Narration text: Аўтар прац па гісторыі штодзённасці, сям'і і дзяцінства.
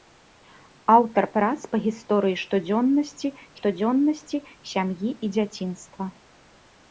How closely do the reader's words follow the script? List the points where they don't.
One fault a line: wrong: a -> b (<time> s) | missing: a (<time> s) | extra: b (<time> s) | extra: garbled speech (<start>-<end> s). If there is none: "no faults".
extra: штодзённасці (3.6 s)